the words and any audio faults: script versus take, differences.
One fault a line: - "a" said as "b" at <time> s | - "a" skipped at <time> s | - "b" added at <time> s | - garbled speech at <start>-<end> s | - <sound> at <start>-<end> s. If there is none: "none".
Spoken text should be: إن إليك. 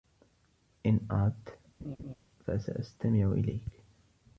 - "أردت فسأستمع" added at 1.1 s
- laugh at 1.8-2.2 s